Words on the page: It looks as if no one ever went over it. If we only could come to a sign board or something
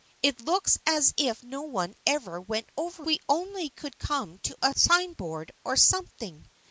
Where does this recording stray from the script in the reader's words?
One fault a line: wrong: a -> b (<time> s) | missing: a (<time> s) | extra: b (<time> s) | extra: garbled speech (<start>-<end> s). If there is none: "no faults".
missing: it If (3.1 s)